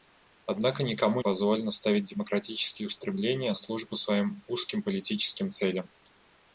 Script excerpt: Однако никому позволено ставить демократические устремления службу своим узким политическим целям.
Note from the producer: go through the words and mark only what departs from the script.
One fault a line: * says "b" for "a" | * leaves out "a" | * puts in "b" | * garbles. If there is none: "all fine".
all fine